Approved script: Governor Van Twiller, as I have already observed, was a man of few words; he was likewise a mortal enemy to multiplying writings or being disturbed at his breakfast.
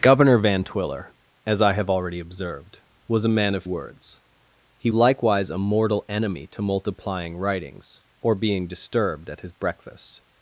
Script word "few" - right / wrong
wrong